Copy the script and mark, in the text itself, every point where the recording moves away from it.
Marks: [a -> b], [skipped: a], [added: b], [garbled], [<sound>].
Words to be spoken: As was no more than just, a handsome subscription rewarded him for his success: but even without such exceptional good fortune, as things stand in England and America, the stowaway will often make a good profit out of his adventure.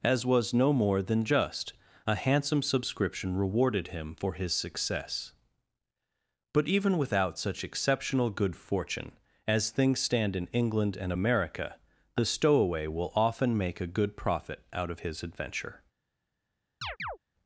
As was no more than just, a handsome subscription rewarded him for his success: but even without such exceptional good fortune, as things stand in England and America, the stowaway will often make a good profit out of his adventure. [chirp]